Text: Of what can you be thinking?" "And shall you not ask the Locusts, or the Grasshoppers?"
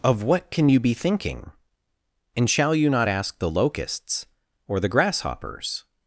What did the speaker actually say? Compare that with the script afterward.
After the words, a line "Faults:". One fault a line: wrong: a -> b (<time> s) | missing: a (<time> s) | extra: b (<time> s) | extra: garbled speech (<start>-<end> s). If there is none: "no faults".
Of what can you be thinking?" "And shall you not ask the Locusts, or the Grasshoppers?"
Faults:
no faults